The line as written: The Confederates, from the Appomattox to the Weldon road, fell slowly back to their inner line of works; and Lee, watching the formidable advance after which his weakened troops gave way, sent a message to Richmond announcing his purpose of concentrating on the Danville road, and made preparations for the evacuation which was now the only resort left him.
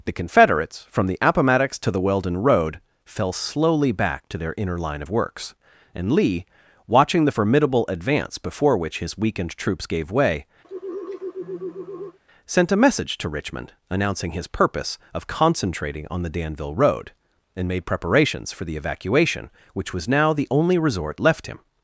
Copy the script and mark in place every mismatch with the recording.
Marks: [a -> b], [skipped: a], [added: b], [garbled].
The Confederates, from the Appomattox to the Weldon road, fell slowly back to their inner line of works; and Lee, watching the formidable advance [after -> before] which his weakened troops gave way, sent a message to Richmond announcing his purpose of concentrating on the Danville road, and made preparations for the evacuation which was now the only resort left him.